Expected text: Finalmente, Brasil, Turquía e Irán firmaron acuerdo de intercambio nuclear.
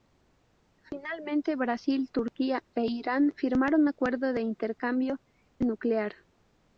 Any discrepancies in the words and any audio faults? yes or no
no